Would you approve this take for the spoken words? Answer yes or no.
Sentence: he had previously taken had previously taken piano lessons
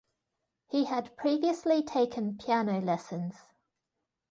no